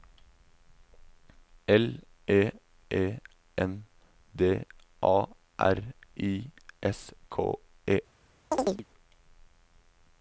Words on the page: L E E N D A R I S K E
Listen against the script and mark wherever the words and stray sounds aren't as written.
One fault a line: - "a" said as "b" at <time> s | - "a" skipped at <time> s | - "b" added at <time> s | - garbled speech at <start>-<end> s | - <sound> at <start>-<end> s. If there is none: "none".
- chirp at 8.5-8.8 s